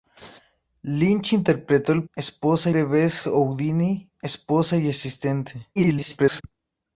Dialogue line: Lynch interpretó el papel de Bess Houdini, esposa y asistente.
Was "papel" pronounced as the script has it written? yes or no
no